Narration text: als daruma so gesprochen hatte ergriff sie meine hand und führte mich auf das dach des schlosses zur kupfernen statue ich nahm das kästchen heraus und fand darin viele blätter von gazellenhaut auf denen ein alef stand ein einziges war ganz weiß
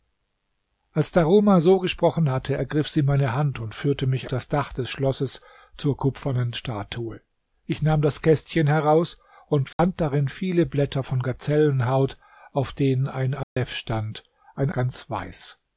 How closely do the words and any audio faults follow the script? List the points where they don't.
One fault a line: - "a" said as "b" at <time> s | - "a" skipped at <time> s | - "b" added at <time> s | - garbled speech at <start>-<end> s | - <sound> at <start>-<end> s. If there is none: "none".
- "auf" skipped at 4.3 s
- dropout at 9.7-9.8 s
- dropout at 13.4-13.6 s
- "einziges war" skipped at 14.7 s